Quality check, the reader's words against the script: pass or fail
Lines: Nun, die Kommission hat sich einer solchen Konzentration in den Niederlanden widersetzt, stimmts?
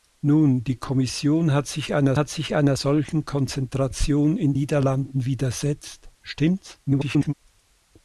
fail